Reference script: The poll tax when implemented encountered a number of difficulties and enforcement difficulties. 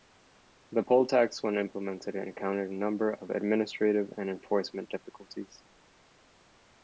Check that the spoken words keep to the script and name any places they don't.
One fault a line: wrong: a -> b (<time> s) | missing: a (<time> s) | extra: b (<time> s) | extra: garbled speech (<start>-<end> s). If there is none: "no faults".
wrong: difficulties -> administrative (3.3 s)